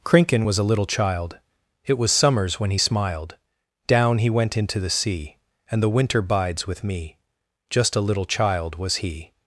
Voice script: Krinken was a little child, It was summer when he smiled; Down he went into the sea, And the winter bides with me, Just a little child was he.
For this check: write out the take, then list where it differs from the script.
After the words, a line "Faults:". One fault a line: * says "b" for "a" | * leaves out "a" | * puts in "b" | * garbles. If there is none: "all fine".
Krinken was a little child, It was summers when he smiled; Down he went into the sea, And the winter bides with me, Just a little child was he.
Faults:
* says "summers" for "summer"